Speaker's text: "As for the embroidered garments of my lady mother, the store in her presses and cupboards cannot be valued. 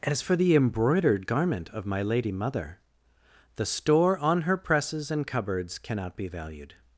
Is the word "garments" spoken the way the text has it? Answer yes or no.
no